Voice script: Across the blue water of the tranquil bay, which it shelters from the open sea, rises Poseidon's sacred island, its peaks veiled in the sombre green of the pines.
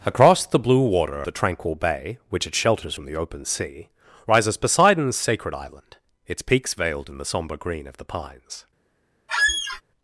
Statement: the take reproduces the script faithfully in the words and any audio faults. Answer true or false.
false